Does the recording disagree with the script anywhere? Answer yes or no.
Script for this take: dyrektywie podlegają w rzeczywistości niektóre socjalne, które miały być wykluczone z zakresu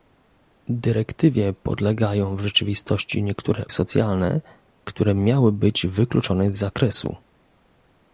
no